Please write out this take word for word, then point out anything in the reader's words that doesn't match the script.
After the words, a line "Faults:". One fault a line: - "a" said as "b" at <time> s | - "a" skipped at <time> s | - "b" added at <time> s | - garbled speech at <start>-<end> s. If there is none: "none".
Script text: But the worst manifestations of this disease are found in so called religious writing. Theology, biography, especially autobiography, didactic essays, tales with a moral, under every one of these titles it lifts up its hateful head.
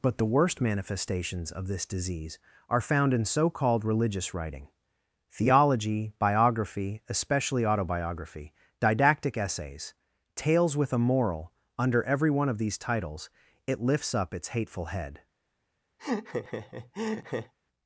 But the worst manifestations of this disease are found in so called religious writing. Theology, biography, especially autobiography, didactic essays, tales with a moral, under every one of these titles it lifts up its hateful head.
Faults:
none